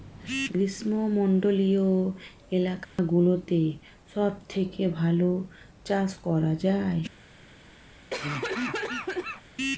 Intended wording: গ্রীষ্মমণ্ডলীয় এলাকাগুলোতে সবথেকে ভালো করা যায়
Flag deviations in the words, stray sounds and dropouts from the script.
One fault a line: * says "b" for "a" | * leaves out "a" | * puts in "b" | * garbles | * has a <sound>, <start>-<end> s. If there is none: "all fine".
* has a dropout, 2.8-3.0 s
* puts in "চাষ"
* has a cough, 8.1-9.4 s